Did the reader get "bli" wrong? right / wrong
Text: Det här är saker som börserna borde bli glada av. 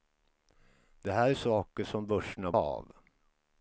wrong